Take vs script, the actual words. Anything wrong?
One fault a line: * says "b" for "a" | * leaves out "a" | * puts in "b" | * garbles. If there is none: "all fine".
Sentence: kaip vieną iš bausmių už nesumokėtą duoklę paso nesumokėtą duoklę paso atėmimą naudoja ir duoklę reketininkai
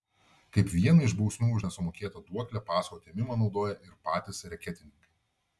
* leaves out "nesumokėtą duoklę paso"
* says "patys" for "duoklę"